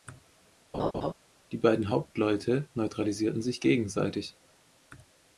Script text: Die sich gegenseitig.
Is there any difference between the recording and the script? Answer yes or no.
yes